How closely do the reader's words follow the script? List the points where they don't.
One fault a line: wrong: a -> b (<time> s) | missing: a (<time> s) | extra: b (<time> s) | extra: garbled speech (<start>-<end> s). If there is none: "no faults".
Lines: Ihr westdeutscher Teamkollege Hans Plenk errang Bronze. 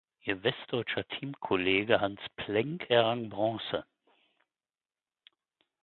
no faults